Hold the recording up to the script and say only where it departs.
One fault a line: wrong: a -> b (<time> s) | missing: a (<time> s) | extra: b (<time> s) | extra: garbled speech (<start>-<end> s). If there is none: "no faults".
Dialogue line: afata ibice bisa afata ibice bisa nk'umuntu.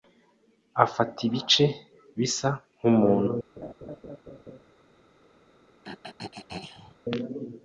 missing: afata ibice bisa (2.5 s)